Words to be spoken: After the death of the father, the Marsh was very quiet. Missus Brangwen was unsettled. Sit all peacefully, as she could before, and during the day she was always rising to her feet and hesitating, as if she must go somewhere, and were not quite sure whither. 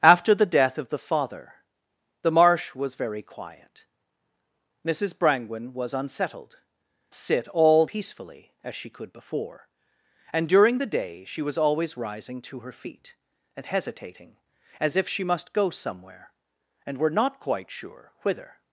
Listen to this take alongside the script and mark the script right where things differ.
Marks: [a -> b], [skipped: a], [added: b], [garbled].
After the death of the father, the Marsh was very quiet. Missus Brangwen was unsettled. Sit all peacefully, as she could before, and during the day she was always rising to her feet and hesitating, as if she must go somewhere, and were not quite sure whither.